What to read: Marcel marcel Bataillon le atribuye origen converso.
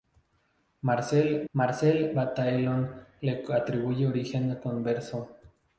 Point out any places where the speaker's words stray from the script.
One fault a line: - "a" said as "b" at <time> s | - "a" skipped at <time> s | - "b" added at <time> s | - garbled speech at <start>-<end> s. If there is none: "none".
none